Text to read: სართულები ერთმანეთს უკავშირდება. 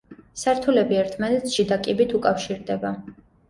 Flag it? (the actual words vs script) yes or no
yes